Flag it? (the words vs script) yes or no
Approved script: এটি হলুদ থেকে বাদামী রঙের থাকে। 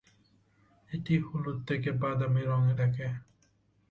no